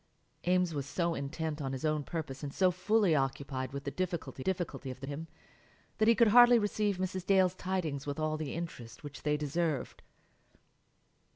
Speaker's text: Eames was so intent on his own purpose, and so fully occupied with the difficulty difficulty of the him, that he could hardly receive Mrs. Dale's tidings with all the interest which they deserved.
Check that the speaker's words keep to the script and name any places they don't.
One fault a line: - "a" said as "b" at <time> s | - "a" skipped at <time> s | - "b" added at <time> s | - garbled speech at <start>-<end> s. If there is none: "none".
none